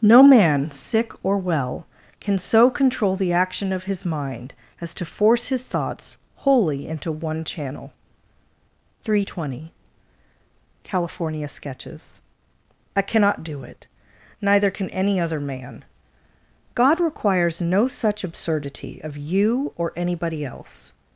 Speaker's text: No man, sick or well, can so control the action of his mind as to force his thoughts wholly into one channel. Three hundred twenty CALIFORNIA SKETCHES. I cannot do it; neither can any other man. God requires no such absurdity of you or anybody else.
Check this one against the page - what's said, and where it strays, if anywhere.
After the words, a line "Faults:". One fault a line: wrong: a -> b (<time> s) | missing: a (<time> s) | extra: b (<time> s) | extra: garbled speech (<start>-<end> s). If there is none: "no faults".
No man, sick or well, can so control the action of his mind as to force his thoughts wholly into one channel. Three hundred twenty CALIFORNIA SKETCHES. I cannot do it; neither can any other man. God requires no such absurdity of you or anybody else.
Faults:
no faults